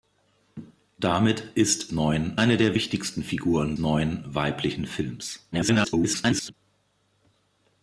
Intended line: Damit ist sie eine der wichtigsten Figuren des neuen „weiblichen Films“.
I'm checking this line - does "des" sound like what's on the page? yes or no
no